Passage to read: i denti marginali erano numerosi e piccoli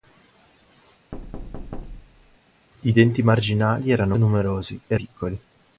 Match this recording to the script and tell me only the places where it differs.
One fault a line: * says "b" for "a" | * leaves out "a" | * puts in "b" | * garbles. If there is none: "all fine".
all fine